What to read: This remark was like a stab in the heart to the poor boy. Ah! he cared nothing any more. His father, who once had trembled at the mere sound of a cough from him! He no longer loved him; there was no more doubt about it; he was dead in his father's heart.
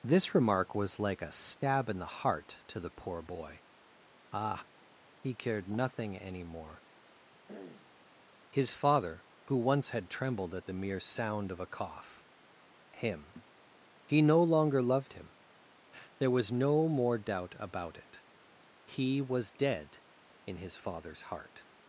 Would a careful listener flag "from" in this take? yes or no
yes